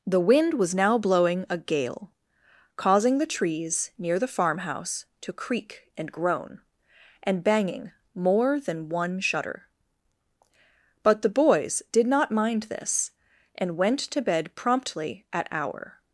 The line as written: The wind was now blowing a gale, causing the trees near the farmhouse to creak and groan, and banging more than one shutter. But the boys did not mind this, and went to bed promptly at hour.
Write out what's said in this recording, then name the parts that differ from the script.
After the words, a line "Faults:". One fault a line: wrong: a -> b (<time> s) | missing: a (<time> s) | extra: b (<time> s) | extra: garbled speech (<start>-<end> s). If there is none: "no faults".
The wind was now blowing a gale, causing the trees near the farmhouse to creak and groan, and banging more than one shutter. But the boys did not mind this, and went to bed promptly at hour.
Faults:
no faults